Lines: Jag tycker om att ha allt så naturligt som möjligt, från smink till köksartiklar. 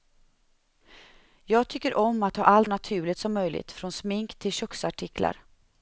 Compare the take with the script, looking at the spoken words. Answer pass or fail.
fail